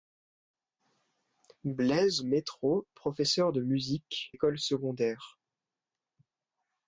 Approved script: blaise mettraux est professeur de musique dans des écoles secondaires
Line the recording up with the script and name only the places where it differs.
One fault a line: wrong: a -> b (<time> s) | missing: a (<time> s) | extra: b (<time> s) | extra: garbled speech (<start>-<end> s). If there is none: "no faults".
missing: est (2.9 s)
missing: dans des (4.3 s)